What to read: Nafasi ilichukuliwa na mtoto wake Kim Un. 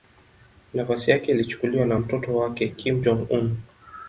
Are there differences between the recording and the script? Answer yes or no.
yes